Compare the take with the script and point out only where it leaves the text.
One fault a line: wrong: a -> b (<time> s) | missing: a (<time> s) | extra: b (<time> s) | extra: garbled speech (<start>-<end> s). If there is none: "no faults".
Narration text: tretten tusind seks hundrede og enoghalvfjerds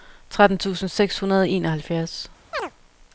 no faults